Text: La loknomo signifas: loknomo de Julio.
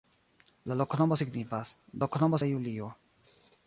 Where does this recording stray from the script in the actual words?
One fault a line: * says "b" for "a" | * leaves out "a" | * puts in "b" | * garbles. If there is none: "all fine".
all fine